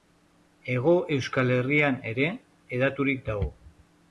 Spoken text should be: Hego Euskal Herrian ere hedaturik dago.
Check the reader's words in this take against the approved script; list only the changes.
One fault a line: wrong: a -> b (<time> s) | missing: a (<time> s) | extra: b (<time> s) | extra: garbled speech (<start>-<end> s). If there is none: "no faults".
no faults